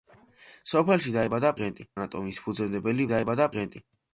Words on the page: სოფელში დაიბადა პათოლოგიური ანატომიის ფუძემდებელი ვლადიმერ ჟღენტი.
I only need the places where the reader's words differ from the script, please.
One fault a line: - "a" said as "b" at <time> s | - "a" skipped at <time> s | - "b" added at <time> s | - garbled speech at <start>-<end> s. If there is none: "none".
- "პათოლოგიური" said as "ჟღენტი" at 1.6 s
- "ვლადიმერ" said as "დაიბადა" at 3.1 s